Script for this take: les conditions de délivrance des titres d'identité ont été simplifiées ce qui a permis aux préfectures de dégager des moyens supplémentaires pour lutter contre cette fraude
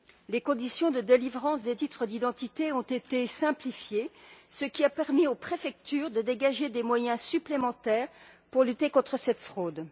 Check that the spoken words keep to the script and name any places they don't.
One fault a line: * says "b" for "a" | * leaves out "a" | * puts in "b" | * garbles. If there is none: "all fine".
all fine